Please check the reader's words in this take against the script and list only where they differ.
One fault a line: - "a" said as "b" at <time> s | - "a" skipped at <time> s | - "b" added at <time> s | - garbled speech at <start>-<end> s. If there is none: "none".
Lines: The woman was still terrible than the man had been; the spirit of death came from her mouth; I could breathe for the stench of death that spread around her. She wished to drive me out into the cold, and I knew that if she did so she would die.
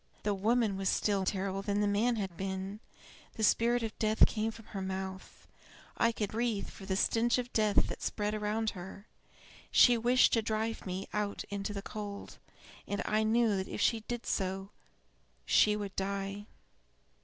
none